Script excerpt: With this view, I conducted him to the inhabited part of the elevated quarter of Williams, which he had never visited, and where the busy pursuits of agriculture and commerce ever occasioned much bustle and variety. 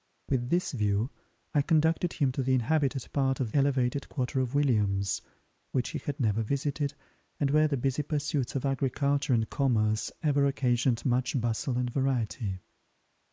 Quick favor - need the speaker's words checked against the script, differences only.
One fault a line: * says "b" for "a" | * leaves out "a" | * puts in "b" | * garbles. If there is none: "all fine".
* leaves out "the"